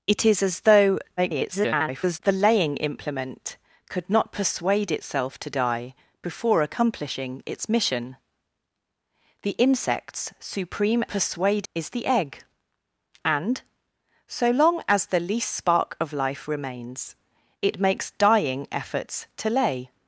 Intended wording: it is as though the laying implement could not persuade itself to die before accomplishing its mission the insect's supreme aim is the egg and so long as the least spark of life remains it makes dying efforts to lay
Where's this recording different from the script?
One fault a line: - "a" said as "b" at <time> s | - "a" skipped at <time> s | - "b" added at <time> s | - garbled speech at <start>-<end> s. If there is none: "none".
- garbled speech at 1.2-2.2 s
- "aim" said as "persuade" at 11.1 s